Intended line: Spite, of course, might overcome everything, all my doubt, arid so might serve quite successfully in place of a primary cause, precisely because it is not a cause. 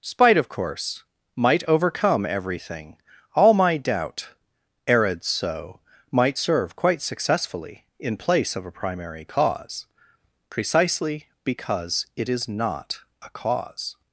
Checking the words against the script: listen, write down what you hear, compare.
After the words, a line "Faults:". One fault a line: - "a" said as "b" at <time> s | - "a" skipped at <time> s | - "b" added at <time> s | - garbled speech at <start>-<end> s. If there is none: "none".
Spite, of course, might overcome everything, all my doubt, arid so might serve quite successfully in place of a primary cause, precisely because it is not a cause.
Faults:
none